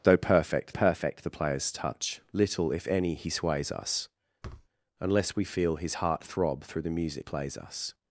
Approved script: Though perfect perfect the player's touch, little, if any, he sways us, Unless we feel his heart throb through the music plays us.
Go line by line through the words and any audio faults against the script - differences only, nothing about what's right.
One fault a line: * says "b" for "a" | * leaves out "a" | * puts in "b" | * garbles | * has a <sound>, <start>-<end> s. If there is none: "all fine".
* has a thud, 4.4-4.7 s